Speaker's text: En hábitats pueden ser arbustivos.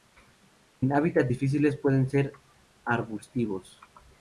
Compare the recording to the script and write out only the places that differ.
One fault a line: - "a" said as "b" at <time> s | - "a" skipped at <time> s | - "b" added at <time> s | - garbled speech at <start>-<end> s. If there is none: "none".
- "difíciles" added at 1.3 s